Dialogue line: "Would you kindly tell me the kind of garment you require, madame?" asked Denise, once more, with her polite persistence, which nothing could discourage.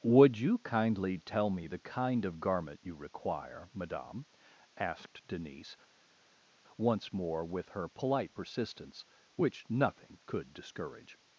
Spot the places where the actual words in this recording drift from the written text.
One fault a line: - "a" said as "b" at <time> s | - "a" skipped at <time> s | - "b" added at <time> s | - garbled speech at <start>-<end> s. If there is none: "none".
none